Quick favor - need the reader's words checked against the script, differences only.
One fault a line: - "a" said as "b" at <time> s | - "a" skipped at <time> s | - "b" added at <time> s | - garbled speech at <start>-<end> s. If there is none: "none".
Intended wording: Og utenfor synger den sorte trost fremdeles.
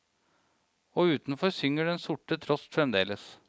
none